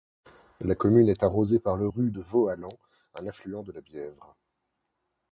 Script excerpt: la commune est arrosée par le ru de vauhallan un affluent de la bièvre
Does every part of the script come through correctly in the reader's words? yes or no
yes